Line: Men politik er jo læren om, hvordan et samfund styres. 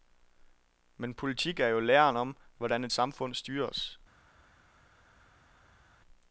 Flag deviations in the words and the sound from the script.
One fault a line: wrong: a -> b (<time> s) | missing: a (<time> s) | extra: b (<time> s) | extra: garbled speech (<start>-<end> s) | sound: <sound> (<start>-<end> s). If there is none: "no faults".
no faults